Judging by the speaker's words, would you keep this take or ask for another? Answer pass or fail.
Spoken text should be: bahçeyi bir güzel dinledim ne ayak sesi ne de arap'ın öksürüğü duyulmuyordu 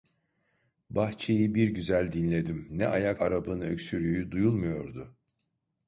fail